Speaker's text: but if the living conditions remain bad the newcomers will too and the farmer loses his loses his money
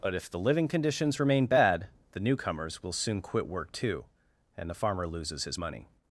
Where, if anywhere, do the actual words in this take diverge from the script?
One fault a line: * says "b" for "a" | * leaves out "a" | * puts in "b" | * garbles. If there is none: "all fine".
* puts in "soon quit work"
* leaves out "loses his"